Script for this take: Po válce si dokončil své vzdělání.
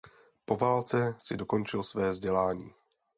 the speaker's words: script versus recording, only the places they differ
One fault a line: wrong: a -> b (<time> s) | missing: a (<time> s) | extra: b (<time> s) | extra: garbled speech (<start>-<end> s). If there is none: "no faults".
no faults